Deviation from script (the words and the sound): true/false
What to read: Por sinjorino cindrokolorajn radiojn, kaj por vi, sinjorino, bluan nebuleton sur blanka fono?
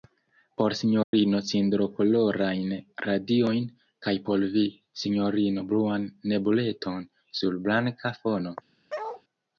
true